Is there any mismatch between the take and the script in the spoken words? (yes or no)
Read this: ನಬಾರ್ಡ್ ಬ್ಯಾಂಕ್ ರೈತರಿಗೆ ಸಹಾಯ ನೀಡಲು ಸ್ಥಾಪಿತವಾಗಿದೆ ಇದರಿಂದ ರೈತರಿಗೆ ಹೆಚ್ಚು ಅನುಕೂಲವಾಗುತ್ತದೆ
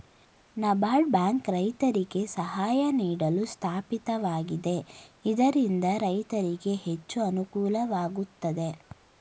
no